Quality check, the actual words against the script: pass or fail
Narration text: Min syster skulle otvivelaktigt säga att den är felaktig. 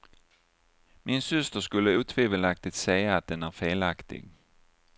pass